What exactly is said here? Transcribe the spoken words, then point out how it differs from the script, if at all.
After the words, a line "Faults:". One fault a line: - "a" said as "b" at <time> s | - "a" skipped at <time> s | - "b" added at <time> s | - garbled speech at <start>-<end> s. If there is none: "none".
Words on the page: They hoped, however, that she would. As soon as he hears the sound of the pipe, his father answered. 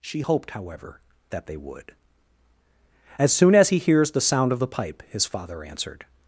She hoped, however, that they would. As soon as he hears the sound of the pipe, his father answered.
Faults:
- "They" said as "She" at 0.0 s
- "she" said as "they" at 1.5 s